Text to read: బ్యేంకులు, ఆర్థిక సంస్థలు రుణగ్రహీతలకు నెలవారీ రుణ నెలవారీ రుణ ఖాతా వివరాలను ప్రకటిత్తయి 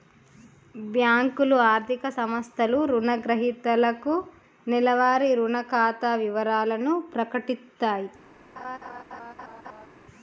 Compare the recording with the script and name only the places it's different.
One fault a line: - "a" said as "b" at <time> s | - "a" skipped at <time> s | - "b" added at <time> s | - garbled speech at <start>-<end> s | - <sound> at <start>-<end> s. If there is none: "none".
- "నెలవారీ రుణ" skipped at 5.6 s
- laugh at 8.6-9.9 s